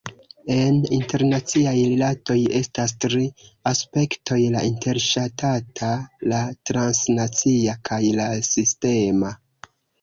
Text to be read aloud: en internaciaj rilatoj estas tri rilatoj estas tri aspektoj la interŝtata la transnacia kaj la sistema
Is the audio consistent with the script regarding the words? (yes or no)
no